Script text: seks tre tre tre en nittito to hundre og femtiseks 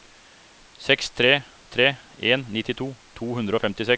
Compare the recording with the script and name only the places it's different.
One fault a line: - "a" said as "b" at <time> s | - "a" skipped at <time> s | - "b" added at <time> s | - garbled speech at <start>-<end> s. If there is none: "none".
- "tre" skipped at 1.9 s